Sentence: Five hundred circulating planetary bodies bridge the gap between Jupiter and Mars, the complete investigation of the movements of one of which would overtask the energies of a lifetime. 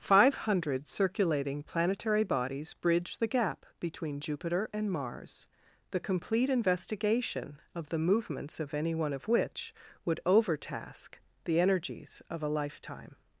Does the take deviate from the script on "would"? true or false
false